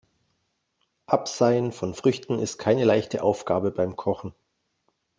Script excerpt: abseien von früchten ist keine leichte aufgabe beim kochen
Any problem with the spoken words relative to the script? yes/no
no